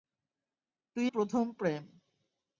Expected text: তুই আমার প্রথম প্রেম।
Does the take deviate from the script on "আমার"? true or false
true